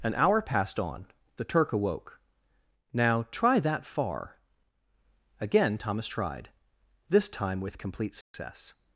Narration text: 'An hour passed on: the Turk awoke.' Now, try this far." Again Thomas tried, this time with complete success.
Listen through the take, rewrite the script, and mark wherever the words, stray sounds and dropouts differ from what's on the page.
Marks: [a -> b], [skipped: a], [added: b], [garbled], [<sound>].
'An hour passed on: the Turk awoke.' Now, try [this -> that] far." Again Thomas tried, this time with complete success. [dropout]